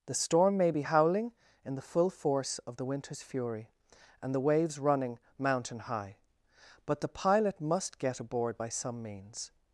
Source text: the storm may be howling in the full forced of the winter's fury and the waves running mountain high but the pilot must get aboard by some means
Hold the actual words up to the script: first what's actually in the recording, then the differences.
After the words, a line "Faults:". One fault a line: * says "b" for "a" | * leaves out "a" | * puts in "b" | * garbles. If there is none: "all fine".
the storm may be howling in the full force of the winter's fury and the waves running mountain high but the pilot must get aboard by some means
Faults:
* says "force" for "forced"